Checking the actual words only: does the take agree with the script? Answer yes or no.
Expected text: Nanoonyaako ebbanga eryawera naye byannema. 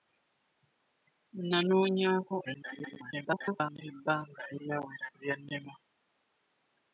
no